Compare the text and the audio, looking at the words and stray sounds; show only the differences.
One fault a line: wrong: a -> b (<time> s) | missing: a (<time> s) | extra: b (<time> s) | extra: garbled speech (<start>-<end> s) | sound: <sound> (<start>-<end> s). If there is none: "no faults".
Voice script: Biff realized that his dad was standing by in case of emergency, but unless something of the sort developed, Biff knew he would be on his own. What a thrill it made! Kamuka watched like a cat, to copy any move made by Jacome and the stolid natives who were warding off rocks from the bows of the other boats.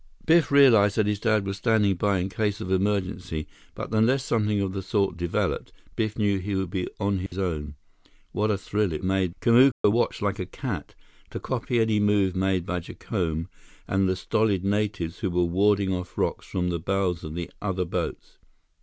sound: dropout (7.3-7.3 s)
sound: dropout (9.7-9.8 s)